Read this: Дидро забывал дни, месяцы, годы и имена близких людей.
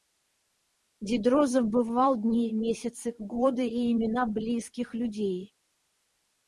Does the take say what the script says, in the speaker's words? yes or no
yes